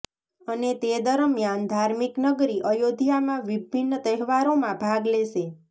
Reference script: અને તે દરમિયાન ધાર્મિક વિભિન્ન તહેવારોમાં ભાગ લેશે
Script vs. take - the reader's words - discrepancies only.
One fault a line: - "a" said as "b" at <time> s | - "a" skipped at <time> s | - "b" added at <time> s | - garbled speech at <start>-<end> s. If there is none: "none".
- "નગરી અયોધ્યામાં" added at 2.2 s